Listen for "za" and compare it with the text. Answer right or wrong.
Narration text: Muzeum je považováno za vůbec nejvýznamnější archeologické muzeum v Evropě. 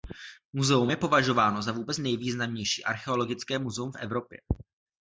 right